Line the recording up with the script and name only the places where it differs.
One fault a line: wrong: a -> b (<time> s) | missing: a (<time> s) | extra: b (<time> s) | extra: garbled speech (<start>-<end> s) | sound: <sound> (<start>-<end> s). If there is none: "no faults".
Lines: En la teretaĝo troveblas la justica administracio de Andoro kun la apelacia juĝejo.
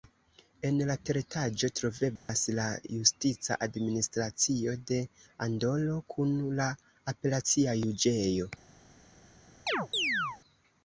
sound: dropout (2.2-2.3 s)
sound: chirp (9.7-10.4 s)